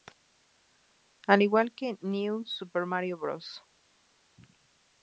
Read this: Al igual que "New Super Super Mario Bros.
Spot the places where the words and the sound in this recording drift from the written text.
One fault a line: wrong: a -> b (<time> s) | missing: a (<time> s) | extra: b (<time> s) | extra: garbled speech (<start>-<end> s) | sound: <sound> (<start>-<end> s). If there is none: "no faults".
missing: Super (2.9 s)